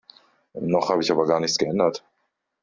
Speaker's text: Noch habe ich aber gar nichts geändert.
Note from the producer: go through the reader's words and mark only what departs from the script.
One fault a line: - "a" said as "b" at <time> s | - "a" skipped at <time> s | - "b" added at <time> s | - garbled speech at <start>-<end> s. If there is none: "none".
none